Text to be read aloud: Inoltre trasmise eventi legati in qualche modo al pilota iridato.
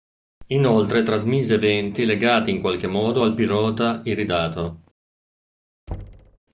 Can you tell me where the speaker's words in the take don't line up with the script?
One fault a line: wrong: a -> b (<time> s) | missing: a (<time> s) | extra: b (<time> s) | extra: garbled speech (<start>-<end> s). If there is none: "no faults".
no faults